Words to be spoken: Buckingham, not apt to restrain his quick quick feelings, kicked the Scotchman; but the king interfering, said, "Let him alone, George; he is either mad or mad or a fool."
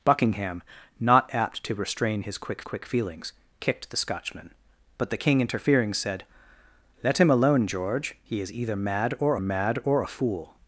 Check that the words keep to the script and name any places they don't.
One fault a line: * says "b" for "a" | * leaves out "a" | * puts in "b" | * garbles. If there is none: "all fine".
all fine